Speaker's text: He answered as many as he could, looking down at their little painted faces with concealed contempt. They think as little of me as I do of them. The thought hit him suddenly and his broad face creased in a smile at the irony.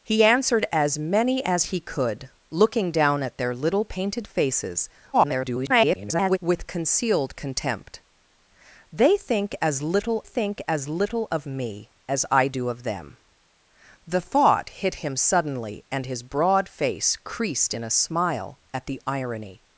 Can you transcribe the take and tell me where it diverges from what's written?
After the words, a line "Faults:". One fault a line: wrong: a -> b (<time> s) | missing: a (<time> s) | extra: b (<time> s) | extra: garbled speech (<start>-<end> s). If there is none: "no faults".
He answered as many as he could, looking down at their little painted faces [garbled] with concealed contempt. They think as little think as little of me as I do of them. The thought hit him suddenly and his broad face creased in a smile at the irony.
Faults:
extra: garbled speech (5.1-6.4 s)
extra: think as little (10.2 s)